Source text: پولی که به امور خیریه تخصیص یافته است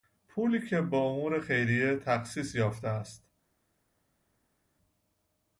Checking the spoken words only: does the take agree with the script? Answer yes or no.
yes